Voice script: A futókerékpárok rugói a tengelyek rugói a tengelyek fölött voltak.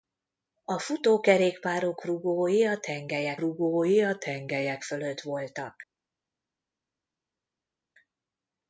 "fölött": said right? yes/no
yes